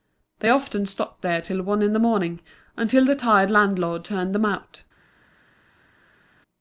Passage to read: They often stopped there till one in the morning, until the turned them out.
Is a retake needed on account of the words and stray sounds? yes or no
yes